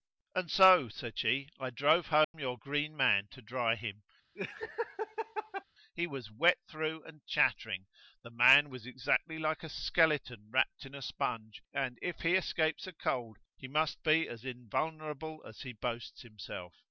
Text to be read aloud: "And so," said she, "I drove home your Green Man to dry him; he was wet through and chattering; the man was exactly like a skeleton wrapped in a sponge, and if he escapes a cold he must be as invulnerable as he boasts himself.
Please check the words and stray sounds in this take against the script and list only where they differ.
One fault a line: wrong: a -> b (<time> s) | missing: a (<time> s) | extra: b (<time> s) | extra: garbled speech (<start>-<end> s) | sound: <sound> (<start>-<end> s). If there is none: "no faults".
sound: dropout (2.2-2.3 s)
sound: laugh (4.4-5.6 s)